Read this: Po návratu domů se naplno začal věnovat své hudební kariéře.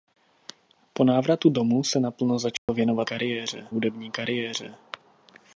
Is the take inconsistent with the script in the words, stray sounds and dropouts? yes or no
yes